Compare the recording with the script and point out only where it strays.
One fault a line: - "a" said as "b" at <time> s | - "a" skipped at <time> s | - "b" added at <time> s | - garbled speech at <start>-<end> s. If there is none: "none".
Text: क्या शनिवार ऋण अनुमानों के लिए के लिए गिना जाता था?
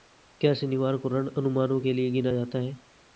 - "को" added at 1.0 s
- "के लिए" skipped at 2.1 s
- "था" said as "है" at 2.6 s